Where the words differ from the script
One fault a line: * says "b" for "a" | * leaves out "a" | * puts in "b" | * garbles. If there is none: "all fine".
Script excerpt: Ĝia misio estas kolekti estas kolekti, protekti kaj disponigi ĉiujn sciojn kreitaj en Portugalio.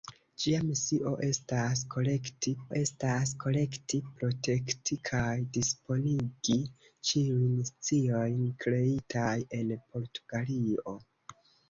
all fine